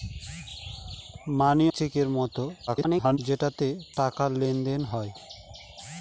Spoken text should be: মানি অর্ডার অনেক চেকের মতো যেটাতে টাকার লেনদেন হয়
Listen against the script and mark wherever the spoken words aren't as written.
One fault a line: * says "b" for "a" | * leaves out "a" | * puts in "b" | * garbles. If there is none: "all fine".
* leaves out "অর্ডার অনেক"
* garbles